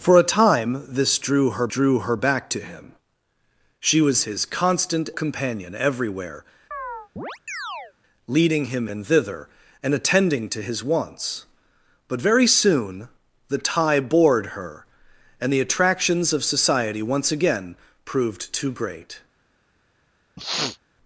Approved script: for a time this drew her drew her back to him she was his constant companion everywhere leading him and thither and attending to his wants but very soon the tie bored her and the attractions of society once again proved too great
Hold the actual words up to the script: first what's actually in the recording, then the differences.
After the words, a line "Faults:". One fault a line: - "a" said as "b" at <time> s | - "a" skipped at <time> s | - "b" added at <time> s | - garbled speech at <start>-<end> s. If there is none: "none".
for a time this drew her drew her back to him she was his constant companion everywhere leading him and thither and attending to his wants but very soon the tie bored her and the attractions of society once again proved too great
Faults:
none